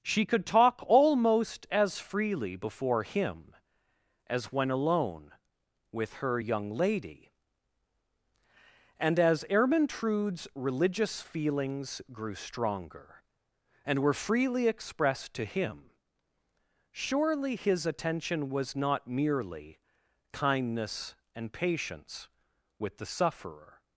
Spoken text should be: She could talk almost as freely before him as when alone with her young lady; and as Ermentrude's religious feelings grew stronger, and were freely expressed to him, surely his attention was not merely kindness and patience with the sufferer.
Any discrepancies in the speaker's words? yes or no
no